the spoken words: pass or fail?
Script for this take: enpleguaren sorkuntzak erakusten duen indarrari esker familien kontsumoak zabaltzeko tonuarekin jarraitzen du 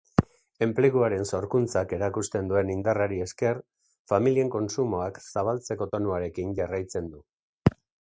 pass